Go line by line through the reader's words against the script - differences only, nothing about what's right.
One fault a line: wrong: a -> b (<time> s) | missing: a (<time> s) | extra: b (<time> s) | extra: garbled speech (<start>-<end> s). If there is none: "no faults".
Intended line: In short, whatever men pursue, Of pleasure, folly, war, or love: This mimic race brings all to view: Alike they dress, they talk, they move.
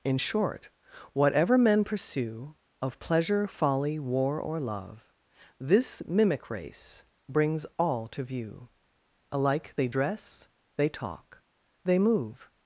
no faults